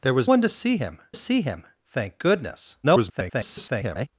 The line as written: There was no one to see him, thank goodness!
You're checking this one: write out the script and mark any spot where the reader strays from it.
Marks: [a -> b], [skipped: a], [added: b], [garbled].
There was [skipped: no] one to see him, [added: see him] thank goodness! [garbled]